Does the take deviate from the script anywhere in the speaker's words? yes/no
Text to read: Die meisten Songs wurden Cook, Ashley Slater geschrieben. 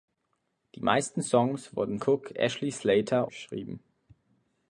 no